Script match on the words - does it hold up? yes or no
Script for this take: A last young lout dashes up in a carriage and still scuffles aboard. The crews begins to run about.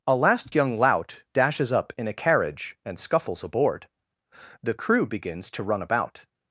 no